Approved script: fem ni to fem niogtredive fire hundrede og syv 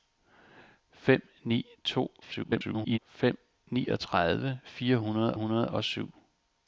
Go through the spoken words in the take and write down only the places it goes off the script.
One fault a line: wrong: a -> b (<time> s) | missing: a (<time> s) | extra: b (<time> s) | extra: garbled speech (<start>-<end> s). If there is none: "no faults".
extra: garbled speech (2.2-3.0 s)
extra: hundrede (5.3 s)